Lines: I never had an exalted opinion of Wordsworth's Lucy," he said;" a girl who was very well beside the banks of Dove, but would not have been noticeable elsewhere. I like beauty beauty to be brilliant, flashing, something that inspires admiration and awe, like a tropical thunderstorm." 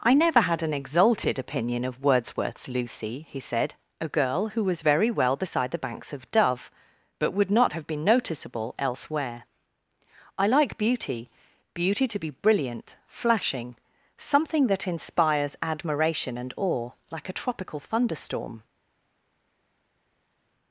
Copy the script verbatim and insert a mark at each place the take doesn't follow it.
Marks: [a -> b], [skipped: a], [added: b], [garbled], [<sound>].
I never had an exalted opinion of Wordsworth's Lucy," he said;" a girl who was very well beside the banks of Dove, but would not have been noticeable elsewhere. I like beauty beauty to be brilliant, flashing, something that inspires admiration and awe, like a tropical thunderstorm."